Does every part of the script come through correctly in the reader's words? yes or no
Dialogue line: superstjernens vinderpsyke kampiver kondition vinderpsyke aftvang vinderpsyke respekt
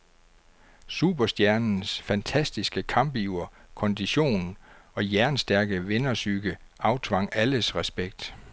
no